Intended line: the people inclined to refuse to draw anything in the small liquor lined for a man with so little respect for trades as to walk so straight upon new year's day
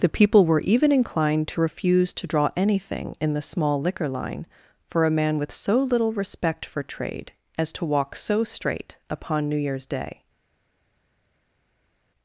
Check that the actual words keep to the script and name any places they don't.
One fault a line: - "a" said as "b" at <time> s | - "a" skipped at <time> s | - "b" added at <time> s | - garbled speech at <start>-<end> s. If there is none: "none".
- "were even" added at 0.5 s
- "lined" said as "line" at 4.1 s
- "trades" said as "trade" at 6.8 s